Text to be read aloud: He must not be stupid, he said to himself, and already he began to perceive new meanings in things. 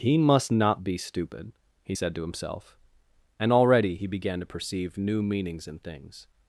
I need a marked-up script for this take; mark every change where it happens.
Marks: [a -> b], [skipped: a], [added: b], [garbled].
He must not be stupid, he said to himself, and already he began to perceive new meanings in things.